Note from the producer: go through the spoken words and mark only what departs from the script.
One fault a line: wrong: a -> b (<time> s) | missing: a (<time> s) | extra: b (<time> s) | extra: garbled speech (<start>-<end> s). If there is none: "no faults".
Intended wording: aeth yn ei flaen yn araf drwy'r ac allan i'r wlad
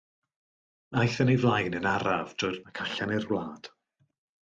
no faults